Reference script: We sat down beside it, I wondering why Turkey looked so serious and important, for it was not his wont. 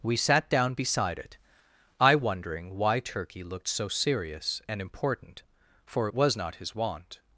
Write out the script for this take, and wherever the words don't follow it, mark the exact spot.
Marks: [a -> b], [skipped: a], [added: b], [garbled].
We sat down beside it, I wondering why Turkey looked so serious and important, for it was not his wont.